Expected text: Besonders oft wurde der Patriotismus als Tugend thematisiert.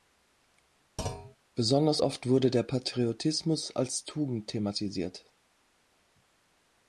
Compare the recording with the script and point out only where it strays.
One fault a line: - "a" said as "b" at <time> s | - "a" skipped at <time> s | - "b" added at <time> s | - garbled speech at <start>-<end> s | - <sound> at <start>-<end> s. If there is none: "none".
- thud at 1.0-1.4 s